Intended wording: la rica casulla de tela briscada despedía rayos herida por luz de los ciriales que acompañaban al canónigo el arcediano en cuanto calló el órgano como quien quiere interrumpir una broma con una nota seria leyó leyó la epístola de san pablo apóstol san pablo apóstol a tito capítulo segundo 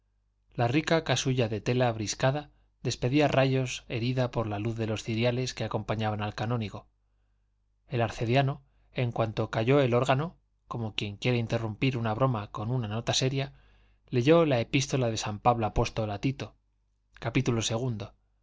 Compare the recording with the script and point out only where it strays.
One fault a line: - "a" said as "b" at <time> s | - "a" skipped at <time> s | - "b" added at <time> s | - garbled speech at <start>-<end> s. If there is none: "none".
- "la" added at 4.5 s
- "leyó" skipped at 14.4 s
- "san pablo apóstol" skipped at 16.1 s